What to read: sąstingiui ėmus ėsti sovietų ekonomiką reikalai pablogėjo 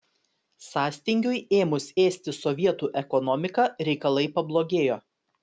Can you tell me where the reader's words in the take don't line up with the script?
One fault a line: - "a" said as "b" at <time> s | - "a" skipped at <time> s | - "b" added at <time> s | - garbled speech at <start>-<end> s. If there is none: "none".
none